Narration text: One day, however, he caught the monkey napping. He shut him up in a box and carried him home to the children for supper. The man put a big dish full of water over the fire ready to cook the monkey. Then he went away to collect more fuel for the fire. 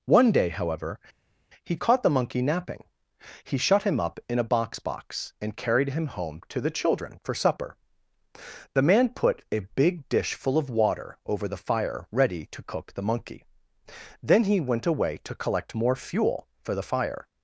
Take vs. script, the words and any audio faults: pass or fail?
fail